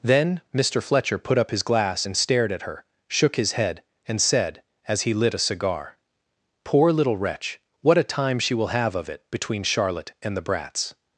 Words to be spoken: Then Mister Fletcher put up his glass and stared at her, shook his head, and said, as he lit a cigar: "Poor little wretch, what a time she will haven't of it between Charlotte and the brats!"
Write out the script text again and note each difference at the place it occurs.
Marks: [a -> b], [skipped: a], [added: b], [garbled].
Then Mister Fletcher put up his glass and stared at her, shook his head, and said, as he lit a cigar: "Poor little wretch, what a time she will [haven't -> have] of it between Charlotte and the brats!"